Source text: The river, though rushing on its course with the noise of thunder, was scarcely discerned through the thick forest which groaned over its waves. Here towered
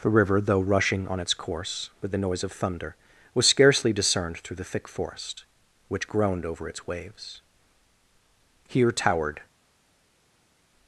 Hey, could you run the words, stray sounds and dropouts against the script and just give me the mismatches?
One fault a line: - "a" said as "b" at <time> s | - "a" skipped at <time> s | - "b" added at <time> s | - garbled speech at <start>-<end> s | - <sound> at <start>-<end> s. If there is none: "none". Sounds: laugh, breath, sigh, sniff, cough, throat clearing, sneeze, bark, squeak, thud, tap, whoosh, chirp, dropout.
none